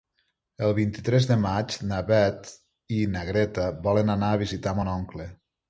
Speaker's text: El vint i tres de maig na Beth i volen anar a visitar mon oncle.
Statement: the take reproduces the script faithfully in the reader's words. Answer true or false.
false